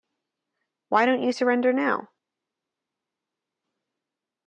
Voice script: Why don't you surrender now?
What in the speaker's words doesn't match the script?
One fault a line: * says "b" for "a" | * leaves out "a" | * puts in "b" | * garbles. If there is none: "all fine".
all fine